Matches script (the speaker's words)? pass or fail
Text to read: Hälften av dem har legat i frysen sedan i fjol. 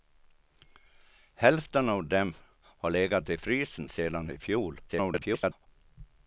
fail